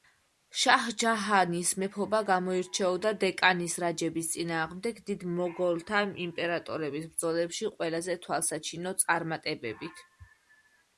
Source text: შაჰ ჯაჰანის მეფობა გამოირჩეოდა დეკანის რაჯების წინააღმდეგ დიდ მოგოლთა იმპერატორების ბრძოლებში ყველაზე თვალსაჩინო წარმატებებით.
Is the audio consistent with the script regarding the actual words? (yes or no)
yes